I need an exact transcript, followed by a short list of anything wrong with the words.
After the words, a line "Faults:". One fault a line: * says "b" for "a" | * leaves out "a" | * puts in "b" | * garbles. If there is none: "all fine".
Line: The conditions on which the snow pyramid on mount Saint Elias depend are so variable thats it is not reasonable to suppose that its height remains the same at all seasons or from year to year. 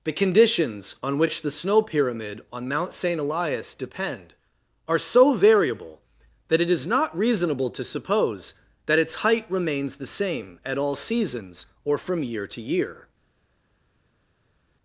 The conditions on which the snow pyramid on mount Saint Elias depend are so variable that it is not reasonable to suppose that its height remains the same at all seasons or from year to year.
Faults:
* says "that" for "thats"